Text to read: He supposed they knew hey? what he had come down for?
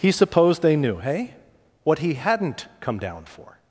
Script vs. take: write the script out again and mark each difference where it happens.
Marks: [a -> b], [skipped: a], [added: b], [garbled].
He supposed they knew hey? what he [had -> hadn't] come down for?